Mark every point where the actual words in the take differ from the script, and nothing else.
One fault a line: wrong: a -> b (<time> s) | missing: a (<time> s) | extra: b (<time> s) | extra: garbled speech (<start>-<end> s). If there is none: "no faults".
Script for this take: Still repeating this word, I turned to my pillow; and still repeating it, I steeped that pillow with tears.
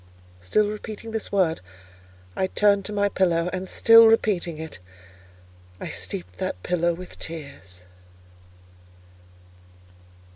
no faults